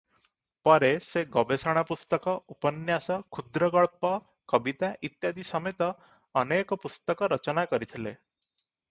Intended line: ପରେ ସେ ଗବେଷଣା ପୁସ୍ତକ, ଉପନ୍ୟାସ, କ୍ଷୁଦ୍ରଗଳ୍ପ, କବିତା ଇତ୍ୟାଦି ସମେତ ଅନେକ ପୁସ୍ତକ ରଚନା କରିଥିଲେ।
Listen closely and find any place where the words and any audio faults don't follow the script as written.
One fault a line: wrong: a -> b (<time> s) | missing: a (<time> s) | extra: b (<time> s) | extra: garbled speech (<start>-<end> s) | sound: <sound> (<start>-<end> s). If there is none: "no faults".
no faults